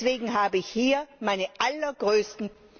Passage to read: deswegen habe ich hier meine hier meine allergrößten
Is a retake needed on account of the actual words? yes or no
yes